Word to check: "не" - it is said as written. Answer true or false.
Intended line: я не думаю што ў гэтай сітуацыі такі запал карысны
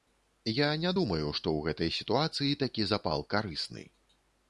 true